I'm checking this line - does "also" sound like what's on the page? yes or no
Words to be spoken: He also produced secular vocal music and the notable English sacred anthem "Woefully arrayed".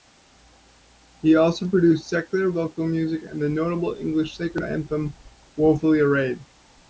yes